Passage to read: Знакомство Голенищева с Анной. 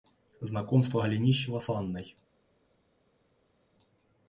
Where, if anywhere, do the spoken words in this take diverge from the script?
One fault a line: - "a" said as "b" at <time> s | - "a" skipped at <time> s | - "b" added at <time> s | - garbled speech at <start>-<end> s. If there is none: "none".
none